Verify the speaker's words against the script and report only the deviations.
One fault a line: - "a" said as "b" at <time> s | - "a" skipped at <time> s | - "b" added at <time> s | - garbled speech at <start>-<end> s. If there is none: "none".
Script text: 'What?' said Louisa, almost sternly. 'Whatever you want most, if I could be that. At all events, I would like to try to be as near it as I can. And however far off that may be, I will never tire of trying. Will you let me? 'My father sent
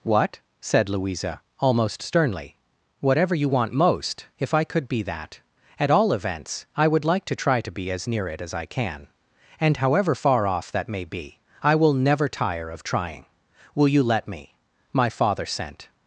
none